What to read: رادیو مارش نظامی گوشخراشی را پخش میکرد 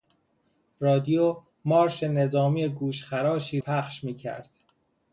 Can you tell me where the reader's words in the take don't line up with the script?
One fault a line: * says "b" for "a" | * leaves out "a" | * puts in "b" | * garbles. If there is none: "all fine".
* leaves out "را"